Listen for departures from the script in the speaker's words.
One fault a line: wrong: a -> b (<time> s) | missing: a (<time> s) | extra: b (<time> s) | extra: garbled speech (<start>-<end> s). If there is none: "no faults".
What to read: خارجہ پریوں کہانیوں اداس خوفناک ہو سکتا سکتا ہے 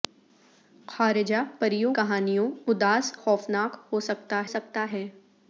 no faults